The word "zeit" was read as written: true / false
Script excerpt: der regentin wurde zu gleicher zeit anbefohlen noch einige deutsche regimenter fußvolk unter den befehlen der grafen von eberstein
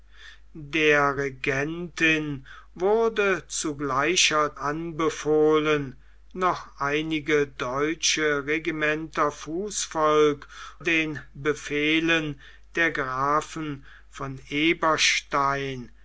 false